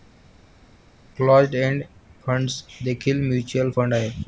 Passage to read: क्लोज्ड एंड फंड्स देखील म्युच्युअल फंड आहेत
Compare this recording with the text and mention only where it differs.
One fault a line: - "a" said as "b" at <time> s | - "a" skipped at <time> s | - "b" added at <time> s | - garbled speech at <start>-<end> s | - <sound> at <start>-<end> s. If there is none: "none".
none